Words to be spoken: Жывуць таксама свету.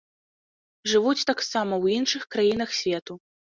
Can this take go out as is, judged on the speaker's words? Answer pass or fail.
fail